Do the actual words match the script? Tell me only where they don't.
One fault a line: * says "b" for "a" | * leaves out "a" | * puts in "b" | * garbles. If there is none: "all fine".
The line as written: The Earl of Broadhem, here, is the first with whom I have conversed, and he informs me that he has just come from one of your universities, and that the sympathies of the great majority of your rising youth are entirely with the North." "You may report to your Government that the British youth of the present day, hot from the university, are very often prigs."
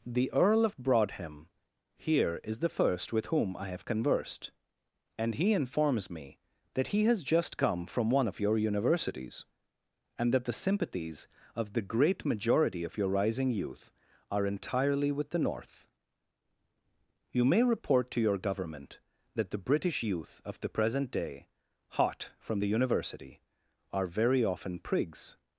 all fine